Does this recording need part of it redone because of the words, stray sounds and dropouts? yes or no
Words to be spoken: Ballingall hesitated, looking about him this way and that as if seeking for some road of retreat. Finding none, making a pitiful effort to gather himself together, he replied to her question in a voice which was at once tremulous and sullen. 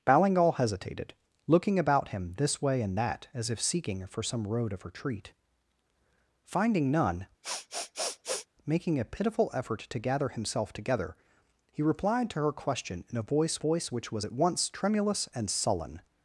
yes